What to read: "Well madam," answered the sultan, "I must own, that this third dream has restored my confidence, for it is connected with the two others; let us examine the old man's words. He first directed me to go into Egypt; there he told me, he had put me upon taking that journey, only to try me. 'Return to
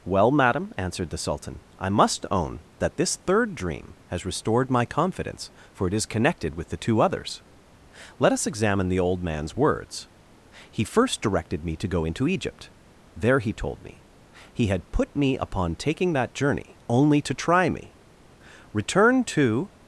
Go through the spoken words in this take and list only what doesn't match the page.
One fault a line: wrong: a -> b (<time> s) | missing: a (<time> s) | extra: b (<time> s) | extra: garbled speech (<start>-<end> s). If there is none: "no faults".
no faults